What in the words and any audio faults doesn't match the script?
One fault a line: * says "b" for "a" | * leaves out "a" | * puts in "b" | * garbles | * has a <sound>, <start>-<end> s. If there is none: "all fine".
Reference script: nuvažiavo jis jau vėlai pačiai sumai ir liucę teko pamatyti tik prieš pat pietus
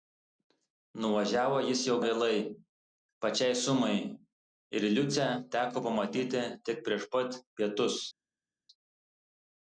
all fine